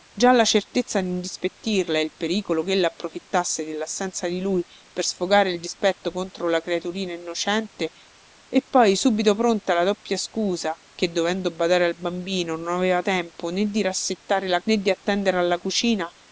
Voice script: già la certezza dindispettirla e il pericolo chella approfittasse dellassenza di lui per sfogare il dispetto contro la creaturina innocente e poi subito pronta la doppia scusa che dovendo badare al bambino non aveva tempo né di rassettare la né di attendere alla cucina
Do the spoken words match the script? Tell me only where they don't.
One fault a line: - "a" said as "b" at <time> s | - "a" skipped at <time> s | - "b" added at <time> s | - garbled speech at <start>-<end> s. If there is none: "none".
none